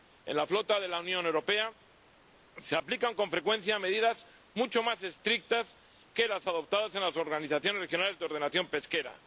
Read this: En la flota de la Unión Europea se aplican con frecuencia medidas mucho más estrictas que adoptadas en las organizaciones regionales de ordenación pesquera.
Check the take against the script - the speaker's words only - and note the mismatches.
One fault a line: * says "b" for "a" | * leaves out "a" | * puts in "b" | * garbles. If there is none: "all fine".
* puts in "las"